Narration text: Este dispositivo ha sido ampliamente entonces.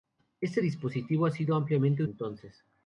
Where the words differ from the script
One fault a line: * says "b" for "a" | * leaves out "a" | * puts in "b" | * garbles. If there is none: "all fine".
all fine